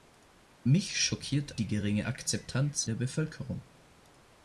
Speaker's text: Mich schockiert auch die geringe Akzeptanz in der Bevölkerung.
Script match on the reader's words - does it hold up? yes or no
no